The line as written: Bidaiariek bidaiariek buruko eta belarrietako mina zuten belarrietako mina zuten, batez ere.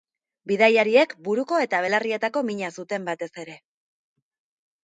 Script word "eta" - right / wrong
right